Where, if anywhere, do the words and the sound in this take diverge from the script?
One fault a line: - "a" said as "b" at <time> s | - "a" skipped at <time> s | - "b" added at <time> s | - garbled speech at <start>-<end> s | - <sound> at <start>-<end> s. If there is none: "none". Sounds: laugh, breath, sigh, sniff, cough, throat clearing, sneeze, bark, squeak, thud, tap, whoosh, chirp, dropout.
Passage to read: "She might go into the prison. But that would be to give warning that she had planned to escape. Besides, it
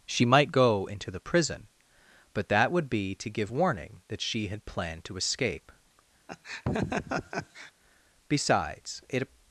- laugh at 6.3-7.7 s